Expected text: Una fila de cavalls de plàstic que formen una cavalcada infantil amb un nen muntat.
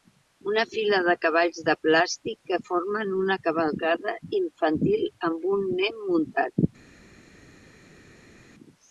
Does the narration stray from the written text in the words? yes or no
no